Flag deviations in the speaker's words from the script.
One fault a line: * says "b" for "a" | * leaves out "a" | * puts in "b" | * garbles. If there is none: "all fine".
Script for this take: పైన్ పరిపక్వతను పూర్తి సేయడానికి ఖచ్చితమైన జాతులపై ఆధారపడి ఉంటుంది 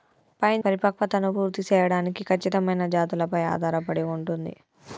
all fine